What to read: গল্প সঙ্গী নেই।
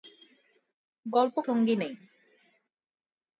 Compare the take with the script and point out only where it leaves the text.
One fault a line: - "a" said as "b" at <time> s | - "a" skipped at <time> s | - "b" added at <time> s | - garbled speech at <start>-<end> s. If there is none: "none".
none